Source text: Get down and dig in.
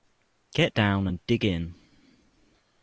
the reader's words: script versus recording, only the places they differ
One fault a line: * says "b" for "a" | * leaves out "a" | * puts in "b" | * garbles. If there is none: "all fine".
all fine